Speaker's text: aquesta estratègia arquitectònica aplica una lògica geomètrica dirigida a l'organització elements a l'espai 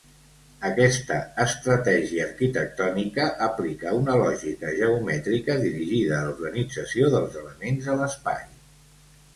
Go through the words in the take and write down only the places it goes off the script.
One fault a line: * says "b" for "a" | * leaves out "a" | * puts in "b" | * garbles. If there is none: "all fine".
* puts in "dels"